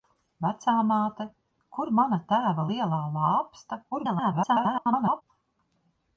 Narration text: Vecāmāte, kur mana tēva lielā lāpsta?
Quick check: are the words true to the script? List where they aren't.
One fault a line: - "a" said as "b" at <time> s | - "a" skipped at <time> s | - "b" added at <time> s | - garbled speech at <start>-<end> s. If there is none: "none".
- garbled speech at 3.9-5.2 s